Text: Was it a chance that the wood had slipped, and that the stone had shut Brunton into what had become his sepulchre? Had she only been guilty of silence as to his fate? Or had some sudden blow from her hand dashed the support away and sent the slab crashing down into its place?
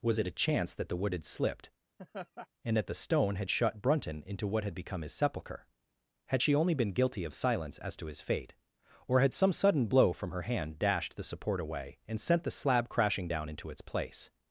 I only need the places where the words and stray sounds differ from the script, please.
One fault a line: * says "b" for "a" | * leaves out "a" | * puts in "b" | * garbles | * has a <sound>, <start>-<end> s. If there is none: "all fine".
* has a laugh, 2.0-2.5 s